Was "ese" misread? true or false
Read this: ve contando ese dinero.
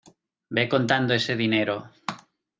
false